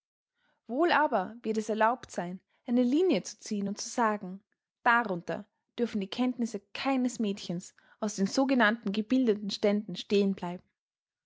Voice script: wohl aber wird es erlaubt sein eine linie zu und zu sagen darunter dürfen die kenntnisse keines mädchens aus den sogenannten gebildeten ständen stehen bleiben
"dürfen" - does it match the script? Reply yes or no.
yes